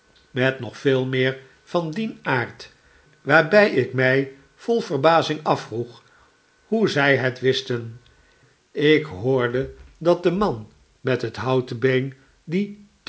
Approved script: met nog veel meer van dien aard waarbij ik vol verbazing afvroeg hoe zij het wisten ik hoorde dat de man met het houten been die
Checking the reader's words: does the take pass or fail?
fail